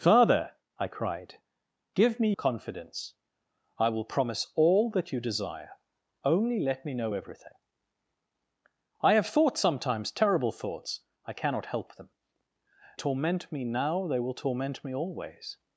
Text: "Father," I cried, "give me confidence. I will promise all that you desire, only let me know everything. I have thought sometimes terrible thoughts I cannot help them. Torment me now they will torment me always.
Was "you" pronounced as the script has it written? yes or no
yes